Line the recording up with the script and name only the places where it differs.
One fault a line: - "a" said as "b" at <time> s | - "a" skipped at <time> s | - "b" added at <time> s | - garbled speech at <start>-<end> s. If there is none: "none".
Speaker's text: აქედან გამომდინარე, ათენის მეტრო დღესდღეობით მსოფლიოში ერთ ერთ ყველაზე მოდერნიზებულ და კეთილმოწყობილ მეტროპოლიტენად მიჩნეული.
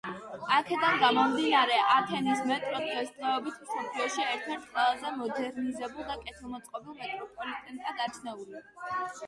none